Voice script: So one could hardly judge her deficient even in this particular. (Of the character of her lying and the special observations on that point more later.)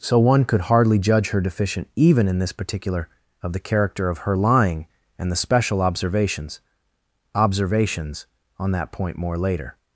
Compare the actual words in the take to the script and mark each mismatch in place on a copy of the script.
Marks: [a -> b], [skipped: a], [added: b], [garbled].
So one could hardly judge her deficient even in this particular. (Of the character of her lying and the special observations [added: observations] on that point more later.)